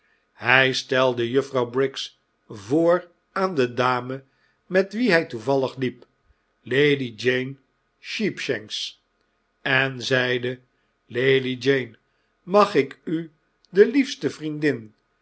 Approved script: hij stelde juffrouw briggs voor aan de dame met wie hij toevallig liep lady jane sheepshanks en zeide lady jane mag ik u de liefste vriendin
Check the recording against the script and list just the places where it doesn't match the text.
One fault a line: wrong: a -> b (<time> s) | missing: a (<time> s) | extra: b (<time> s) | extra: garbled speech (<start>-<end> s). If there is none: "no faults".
no faults